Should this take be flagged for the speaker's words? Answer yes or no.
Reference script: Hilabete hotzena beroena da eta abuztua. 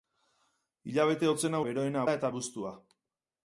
no